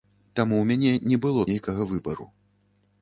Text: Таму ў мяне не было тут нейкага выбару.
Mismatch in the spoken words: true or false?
true